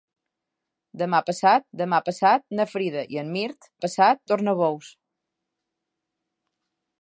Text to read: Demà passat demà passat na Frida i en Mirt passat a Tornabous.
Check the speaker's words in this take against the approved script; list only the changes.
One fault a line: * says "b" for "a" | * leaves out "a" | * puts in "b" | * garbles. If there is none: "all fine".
all fine